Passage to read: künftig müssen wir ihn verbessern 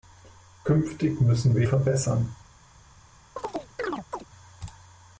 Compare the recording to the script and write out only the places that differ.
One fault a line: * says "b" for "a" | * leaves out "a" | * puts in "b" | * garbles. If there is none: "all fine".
* leaves out "ihn"